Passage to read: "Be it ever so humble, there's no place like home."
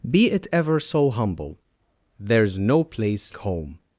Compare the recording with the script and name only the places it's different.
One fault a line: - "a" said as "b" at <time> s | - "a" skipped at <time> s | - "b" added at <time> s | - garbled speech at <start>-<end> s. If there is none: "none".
- "like" skipped at 3.4 s